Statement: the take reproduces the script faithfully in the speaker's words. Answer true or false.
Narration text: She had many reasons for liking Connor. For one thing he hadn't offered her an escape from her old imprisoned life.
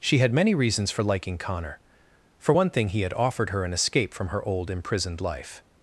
false